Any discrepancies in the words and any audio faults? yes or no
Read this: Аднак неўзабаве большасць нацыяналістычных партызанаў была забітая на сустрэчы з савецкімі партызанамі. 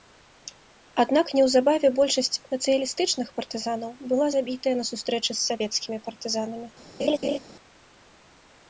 yes